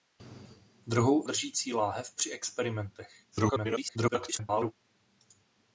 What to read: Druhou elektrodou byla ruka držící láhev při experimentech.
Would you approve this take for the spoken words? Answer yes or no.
no